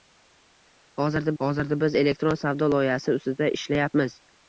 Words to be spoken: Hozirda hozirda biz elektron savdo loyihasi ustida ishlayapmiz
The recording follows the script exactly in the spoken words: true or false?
true